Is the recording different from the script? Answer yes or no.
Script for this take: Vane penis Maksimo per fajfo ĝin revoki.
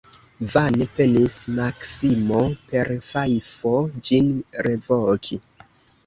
no